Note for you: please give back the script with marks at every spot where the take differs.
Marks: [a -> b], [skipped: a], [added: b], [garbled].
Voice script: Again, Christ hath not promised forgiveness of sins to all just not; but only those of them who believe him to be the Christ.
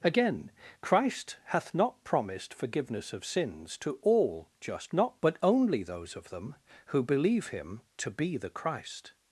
Again, Christ hath not promised forgiveness of sins to all just not; but only those of them who believe him to be the Christ.